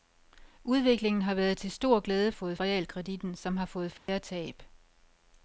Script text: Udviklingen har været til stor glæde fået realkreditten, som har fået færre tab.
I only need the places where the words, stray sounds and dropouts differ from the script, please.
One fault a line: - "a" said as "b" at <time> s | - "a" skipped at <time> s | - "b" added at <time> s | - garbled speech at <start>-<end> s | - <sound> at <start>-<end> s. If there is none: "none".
- dropout at 4.0-4.1 s